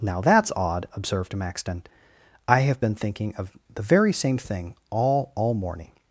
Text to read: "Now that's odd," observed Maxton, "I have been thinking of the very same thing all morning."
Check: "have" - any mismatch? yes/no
no